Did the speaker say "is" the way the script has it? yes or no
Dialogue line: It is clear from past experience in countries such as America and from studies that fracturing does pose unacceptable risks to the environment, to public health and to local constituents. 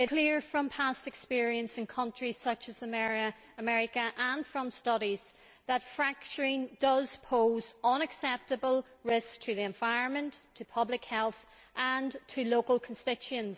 no